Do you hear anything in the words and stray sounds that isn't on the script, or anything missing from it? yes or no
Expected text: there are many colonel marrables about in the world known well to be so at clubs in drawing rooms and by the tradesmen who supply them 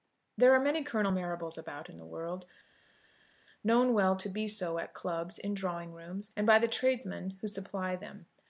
no